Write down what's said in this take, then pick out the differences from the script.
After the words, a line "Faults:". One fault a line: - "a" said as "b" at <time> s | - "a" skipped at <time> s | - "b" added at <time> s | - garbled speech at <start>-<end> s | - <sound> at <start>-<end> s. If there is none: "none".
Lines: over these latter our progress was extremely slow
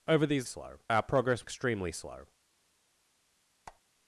over these slow our progress extremely slow
Faults:
- "latter" said as "slow" at 0.4 s
- "was" skipped at 1.4 s
- squeak at 3.7-3.8 s